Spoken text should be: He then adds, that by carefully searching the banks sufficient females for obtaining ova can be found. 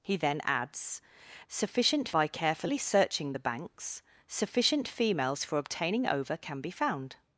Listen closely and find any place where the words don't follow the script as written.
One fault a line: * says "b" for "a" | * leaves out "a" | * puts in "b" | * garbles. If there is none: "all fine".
* says "sufficient" for "that"